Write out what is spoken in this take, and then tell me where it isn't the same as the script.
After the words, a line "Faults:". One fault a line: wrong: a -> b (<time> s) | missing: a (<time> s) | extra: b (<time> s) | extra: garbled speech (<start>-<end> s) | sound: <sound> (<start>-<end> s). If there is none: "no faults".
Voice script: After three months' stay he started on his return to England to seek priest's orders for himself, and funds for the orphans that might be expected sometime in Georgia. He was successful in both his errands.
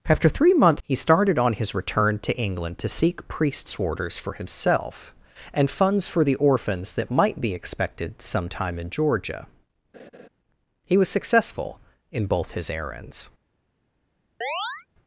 After three months' he started on his return to England to seek priest's orders for himself, and funds for the orphans that might be expected sometime in Georgia. He was successful in both his errands.
Faults:
missing: stay (0.8 s)
sound: laugh (9.9-10.3 s)
sound: chirp (14.4-14.9 s)